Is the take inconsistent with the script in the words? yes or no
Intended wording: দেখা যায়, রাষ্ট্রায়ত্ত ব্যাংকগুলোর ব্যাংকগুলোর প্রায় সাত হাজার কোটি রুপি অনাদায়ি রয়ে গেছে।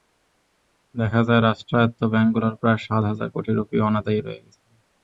yes